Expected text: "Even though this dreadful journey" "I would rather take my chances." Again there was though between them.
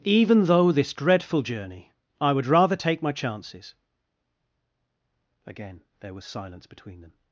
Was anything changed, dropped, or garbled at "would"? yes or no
no